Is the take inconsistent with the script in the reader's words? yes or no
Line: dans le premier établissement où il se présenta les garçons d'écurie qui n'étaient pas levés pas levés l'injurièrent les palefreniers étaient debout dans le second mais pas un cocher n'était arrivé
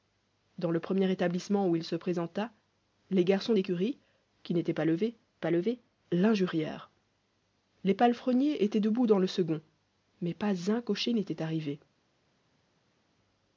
no